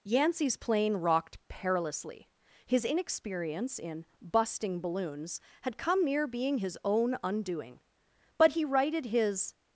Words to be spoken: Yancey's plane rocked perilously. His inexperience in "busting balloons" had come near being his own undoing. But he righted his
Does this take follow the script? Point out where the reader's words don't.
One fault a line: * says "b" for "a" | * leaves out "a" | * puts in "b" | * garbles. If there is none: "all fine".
all fine